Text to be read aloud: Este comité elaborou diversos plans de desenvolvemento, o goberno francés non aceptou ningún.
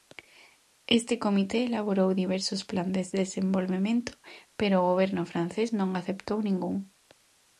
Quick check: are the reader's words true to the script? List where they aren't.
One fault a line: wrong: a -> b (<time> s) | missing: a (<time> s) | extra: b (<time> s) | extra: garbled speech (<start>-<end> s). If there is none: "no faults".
extra: pero (4.6 s)